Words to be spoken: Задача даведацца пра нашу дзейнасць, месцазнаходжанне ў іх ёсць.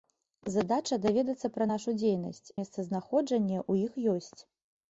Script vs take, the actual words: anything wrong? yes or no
no